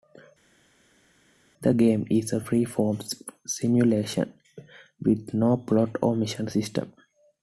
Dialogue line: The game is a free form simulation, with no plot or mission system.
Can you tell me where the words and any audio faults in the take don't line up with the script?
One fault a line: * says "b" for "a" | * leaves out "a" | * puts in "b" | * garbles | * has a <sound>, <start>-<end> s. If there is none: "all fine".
all fine